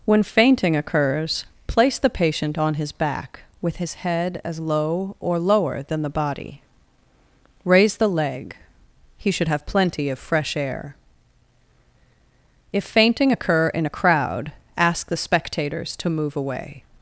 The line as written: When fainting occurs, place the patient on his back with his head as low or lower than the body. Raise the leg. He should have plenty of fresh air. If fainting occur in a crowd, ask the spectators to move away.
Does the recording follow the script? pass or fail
pass